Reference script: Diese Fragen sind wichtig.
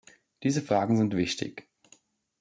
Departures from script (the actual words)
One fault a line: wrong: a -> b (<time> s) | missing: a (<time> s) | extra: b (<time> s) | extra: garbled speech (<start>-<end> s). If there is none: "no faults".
no faults